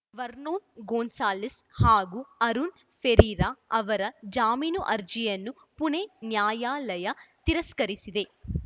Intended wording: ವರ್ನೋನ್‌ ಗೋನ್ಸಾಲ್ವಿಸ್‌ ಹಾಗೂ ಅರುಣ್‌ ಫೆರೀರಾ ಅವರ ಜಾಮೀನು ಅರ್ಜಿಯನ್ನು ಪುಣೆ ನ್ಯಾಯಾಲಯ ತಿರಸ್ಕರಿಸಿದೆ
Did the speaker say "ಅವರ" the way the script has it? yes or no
yes